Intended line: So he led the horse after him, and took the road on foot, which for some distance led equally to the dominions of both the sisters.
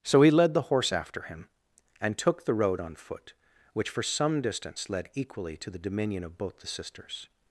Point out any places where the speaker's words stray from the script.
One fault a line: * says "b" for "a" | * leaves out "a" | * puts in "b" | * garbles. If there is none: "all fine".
* says "dominion" for "dominions"